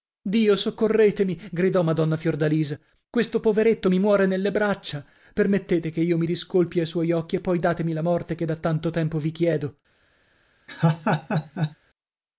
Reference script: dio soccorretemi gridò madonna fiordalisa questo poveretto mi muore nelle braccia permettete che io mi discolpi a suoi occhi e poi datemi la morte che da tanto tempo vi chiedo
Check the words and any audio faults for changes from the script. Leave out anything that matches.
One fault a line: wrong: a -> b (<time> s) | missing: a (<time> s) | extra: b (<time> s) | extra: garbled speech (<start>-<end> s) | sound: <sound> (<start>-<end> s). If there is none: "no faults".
sound: laugh (10.7-11.8 s)